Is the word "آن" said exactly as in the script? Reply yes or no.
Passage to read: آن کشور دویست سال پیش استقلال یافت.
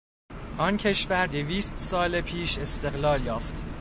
yes